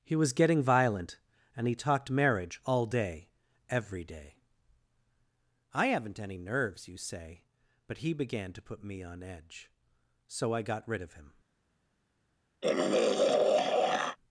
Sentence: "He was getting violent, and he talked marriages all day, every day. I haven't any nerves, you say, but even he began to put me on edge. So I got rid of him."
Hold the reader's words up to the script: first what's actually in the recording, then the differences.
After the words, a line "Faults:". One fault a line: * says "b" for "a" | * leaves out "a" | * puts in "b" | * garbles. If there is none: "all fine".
"He was getting violent, and he talked marriage all day, every day. I haven't any nerves, you say, but he began to put me on edge. So I got rid of him."
Faults:
* says "marriage" for "marriages"
* leaves out "even"